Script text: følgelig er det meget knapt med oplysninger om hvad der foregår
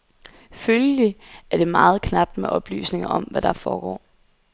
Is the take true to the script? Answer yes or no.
yes